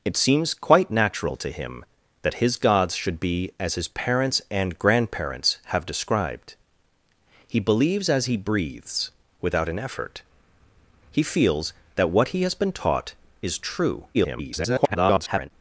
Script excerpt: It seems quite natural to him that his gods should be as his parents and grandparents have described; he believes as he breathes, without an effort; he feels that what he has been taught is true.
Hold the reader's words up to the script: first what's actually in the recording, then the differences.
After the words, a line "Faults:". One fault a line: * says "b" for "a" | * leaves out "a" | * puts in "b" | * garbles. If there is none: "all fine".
It seems quite natural to him that his gods should be as his parents and grandparents have described; he believes as he breathes, without an effort; he feels that what he has been taught is true. [garbled]
Faults:
* garbles